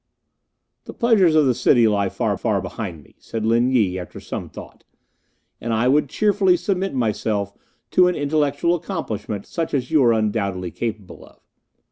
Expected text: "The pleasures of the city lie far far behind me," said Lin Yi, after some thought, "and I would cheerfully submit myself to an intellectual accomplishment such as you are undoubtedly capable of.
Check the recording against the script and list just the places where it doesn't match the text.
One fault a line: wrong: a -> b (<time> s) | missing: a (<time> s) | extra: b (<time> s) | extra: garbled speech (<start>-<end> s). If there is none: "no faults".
no faults